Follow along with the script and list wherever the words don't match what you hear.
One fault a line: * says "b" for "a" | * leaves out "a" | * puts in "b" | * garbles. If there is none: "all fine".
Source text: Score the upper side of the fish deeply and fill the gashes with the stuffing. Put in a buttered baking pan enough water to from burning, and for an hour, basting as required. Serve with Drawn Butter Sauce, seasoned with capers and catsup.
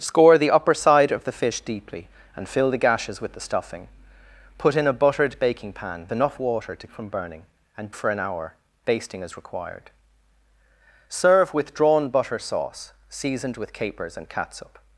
all fine